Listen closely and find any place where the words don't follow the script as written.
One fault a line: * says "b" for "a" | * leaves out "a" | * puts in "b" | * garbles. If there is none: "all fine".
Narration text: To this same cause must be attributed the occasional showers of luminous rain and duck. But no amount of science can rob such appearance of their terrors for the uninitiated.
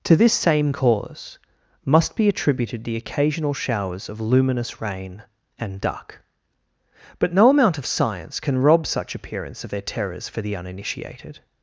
all fine